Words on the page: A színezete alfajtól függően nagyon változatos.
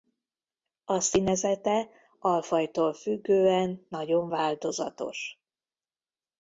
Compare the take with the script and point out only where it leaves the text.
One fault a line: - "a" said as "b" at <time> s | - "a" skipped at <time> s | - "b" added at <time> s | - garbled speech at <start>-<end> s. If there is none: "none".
none